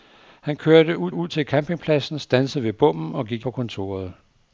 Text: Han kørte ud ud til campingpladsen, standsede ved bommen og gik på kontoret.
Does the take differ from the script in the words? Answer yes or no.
no